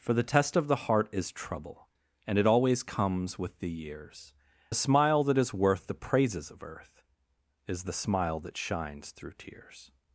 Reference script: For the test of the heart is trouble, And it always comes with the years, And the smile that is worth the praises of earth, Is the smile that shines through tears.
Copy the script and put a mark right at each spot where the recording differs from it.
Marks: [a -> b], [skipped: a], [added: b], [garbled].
For the test of the heart is trouble, And it always comes with the years, [skipped: And] the smile that is worth the praises of earth, Is the smile that shines through tears.